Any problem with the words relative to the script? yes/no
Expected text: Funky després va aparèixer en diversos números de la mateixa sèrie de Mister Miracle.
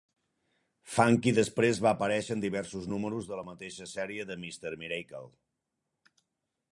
no